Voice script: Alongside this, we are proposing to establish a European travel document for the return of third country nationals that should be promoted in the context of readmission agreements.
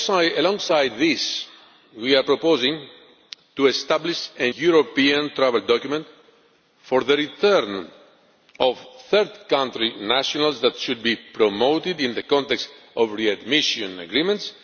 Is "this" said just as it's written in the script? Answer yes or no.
yes